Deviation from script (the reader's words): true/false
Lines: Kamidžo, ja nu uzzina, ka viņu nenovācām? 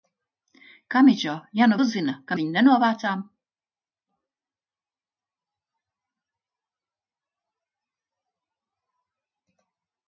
false